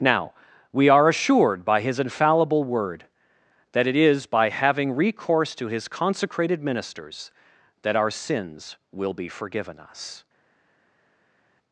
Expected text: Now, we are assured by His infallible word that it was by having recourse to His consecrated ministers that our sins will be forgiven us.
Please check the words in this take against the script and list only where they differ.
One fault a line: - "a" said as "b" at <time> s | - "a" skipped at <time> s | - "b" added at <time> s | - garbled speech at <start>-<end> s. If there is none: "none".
- "was" said as "is" at 4.0 s